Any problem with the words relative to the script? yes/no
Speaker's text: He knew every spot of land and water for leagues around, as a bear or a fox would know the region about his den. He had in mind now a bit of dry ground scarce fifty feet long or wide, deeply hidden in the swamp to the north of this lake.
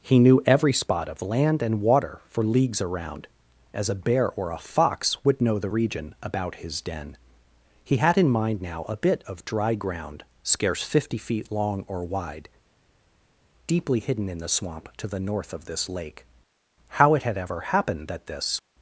yes